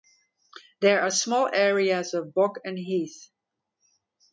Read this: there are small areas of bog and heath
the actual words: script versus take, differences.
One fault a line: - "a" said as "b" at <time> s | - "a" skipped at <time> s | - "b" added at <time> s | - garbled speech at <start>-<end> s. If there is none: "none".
none